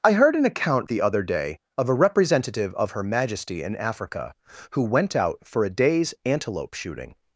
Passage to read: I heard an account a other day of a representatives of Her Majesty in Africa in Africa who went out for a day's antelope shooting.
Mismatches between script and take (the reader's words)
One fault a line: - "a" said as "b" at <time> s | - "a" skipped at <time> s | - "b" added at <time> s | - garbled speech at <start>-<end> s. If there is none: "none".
- "a" said as "the" at 0.8 s
- "representatives" said as "representative" at 1.9 s
- "in Africa" skipped at 4.3 s